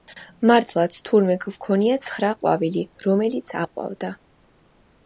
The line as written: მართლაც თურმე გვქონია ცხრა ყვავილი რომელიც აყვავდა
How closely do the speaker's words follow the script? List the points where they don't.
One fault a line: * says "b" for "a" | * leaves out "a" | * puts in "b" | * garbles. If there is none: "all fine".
all fine